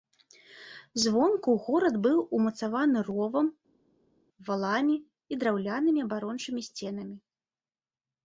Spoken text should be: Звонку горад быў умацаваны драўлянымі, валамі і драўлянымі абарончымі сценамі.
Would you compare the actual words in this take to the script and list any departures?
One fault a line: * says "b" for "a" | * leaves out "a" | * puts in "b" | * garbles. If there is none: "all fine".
* says "ровам" for "драўлянымі"